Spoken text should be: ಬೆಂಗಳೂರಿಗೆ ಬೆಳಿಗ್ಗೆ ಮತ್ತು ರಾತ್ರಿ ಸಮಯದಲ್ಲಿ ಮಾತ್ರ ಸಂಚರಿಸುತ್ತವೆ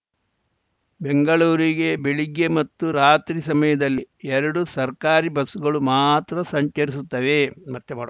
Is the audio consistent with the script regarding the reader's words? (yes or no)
no